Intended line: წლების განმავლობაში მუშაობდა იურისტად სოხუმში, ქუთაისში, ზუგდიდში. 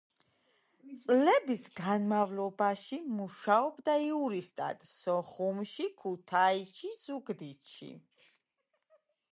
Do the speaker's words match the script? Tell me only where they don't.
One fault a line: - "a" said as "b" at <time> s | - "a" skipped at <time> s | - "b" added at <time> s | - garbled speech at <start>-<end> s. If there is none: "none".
none